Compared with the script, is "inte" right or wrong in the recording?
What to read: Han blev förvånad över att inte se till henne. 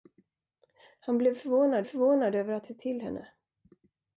wrong